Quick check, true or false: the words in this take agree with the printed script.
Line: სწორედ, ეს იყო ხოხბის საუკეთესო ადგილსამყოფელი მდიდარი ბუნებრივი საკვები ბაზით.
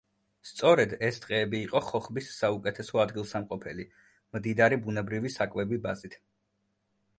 false